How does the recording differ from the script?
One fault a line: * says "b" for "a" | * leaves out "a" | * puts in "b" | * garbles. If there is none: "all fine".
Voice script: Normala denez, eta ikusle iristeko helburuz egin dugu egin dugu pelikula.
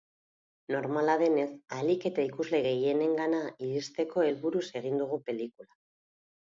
* puts in "ahalik"
* puts in "gehienengana"
* leaves out "egin dugu"